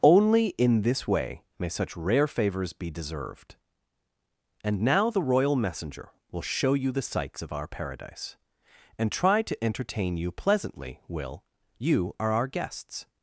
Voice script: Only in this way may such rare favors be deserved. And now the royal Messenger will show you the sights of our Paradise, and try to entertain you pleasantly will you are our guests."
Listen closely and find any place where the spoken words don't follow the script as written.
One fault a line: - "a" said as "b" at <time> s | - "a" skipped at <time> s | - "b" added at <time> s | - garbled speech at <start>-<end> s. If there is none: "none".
none